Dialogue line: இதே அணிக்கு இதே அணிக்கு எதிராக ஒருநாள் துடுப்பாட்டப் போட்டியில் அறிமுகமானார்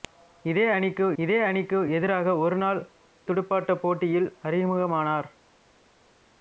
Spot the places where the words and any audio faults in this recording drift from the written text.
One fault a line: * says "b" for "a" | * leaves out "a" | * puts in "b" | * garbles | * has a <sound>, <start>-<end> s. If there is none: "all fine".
all fine